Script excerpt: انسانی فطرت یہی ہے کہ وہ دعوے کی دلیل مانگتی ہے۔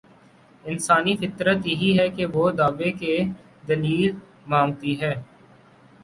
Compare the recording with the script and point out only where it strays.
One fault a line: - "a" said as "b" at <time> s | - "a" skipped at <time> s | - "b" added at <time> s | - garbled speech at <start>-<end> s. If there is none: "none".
none